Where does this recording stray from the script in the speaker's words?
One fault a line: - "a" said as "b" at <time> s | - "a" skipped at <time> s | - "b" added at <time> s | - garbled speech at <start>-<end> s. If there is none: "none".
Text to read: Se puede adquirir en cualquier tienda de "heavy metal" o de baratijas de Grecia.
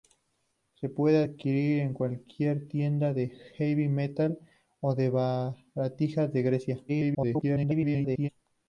- garbled speech at 6.9-8.3 s